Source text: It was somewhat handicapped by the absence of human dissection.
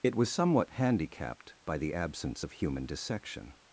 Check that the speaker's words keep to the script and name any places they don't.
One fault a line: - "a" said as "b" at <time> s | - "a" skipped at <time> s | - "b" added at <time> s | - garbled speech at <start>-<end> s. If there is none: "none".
none